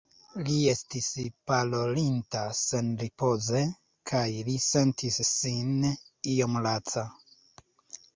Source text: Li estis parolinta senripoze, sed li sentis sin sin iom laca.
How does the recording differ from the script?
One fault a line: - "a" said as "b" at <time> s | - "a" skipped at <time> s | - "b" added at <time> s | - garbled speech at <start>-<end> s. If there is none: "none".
- "sed" said as "kaj" at 4.1 s
- "sin" skipped at 5.9 s